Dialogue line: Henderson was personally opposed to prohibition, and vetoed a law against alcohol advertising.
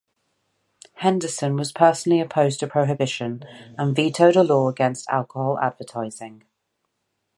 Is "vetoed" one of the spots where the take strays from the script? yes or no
no